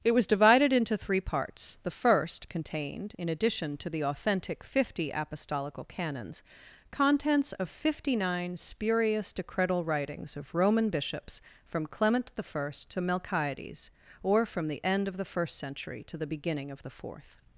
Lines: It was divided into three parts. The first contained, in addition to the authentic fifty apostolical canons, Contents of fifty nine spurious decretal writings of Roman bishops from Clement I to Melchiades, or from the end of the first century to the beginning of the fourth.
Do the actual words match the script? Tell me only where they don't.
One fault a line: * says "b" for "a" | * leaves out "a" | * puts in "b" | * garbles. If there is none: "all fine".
all fine